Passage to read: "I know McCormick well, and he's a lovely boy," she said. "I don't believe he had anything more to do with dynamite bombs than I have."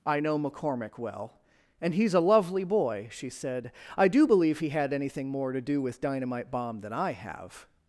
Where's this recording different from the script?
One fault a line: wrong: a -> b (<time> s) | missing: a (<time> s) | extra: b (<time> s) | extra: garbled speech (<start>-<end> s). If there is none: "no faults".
wrong: don't -> do (4.1 s)
wrong: bombs -> bomb (6.5 s)